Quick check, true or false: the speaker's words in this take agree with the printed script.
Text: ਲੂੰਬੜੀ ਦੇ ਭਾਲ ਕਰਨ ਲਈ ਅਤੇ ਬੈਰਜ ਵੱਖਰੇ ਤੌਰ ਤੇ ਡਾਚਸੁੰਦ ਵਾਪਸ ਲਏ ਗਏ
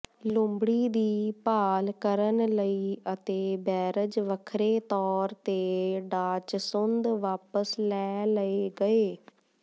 false